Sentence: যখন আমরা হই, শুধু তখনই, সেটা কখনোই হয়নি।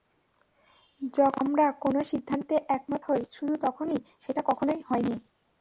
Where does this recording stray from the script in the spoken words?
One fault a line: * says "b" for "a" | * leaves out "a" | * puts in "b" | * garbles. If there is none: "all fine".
* puts in "কোনো সিদ্ধান্তে একমত"